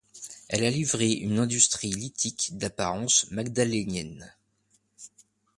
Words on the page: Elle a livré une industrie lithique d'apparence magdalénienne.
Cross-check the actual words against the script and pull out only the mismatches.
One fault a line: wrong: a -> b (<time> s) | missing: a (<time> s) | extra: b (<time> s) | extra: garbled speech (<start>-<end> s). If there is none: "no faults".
no faults